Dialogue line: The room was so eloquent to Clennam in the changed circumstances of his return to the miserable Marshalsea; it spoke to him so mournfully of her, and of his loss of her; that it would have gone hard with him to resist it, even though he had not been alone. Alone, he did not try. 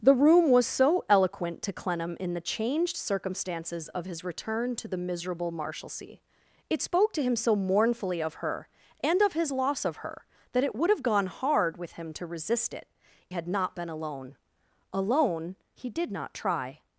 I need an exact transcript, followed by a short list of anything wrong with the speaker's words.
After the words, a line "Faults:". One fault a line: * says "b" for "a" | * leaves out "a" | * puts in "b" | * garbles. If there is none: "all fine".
The room was so eloquent to Clennam in the changed circumstances of his return to the miserable Marshalsea; it spoke to him so mournfully of her, and of his loss of her; that it would have gone hard with him to resist it, had not been alone. Alone, he did not try.
Faults:
* leaves out "even though he"